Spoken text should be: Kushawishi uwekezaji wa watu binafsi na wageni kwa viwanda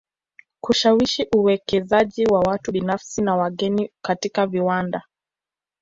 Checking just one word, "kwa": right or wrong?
wrong